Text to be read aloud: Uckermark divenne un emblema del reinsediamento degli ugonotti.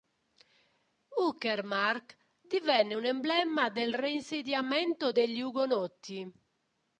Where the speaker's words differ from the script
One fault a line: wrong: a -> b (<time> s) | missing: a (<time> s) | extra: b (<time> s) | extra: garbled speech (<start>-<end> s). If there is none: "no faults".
no faults